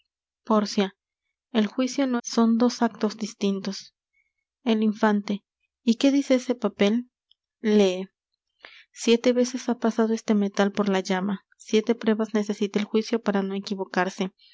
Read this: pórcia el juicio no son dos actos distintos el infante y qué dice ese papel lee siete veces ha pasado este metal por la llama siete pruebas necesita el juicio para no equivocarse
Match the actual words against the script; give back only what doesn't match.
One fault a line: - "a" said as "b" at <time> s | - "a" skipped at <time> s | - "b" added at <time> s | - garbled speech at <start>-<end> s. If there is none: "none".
none